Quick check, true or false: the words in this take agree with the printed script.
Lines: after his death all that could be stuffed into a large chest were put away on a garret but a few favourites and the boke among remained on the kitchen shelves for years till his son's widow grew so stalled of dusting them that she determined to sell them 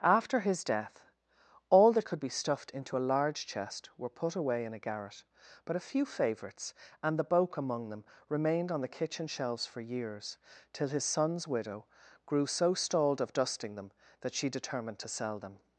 false